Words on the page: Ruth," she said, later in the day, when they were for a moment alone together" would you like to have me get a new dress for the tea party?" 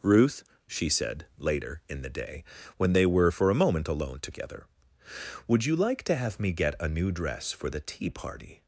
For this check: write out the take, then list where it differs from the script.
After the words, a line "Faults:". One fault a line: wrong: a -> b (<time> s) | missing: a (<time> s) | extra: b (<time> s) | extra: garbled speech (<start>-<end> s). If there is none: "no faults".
Ruth," she said, later in the day, when they were for a moment alone together" would you like to have me get a new dress for the tea party?"
Faults:
no faults